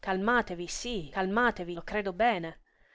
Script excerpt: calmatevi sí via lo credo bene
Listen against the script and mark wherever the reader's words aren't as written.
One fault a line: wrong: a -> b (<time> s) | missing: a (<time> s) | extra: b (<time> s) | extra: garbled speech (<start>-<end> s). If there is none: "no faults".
wrong: via -> calmatevi (1.1 s)